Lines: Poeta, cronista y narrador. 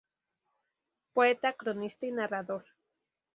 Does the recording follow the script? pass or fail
pass